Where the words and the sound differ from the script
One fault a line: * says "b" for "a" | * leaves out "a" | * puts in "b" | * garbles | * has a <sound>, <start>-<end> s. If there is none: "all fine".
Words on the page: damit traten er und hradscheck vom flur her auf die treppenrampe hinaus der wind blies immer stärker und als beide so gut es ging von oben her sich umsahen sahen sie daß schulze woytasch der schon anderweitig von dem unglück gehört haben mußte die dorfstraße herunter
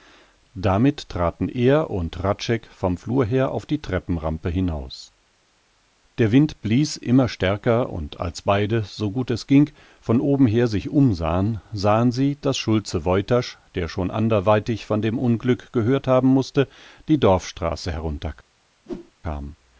* has a whoosh, 18.9-19.1 s